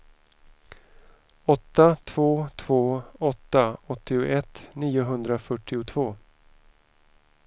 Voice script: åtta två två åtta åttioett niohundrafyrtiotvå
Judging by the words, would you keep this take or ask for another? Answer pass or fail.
pass